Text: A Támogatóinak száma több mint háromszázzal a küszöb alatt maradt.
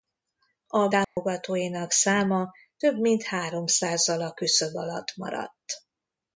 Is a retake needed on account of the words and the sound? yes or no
yes